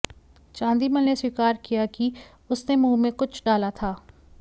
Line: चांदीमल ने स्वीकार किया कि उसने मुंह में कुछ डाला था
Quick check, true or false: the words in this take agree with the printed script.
true